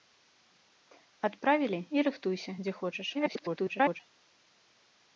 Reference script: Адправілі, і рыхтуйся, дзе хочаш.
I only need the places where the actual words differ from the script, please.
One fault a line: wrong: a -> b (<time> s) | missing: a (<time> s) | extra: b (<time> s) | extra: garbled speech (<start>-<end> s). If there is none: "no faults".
extra: garbled speech (3.1-4.0 s)